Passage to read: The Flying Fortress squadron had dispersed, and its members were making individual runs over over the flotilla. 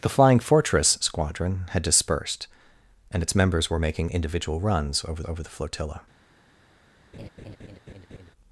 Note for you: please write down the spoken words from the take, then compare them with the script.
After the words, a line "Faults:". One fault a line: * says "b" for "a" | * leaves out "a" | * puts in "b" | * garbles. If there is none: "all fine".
The Flying Fortress squadron had dispersed, and its members were making individual runs over over the flotilla.
Faults:
all fine